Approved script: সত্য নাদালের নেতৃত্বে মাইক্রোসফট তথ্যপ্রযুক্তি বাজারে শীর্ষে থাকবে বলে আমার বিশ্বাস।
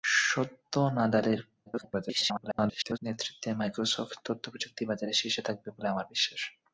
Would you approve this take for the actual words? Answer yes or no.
no